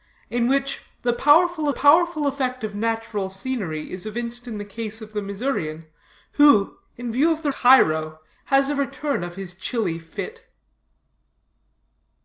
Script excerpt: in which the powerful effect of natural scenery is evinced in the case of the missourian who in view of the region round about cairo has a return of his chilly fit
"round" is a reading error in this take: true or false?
true